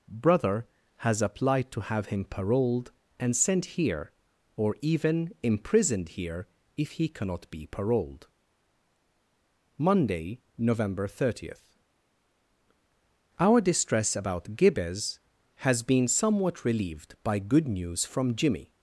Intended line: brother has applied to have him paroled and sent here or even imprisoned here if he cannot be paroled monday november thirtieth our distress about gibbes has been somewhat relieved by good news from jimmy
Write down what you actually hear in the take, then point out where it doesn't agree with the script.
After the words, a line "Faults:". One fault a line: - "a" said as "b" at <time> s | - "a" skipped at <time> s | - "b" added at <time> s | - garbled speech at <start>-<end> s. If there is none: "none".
brother has applied to have him paroled and sent here or even imprisoned here if he cannot be paroled monday november thirtieth our distress about gibbes has been somewhat relieved by good news from jimmy
Faults:
none